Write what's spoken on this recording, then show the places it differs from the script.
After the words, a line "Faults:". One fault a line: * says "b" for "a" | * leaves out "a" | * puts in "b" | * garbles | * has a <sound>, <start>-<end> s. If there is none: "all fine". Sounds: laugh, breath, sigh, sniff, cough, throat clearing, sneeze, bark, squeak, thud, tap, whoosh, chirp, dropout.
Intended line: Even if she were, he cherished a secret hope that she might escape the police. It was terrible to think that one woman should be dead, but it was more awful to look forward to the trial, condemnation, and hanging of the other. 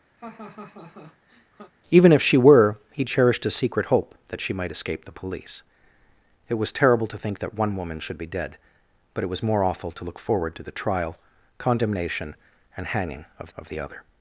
Even if she were, he cherished a secret hope that she might escape the police. It was terrible to think that one woman should be dead, but it was more awful to look forward to the trial, condemnation, and hanging of of the other.
Faults:
* has a laugh, 0.2-1.7 s
* puts in "of"